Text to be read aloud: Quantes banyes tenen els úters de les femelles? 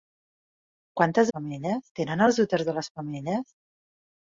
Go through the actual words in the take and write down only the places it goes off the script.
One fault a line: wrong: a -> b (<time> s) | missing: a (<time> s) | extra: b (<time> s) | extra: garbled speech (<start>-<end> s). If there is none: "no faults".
wrong: banyes -> femelles (1.3 s)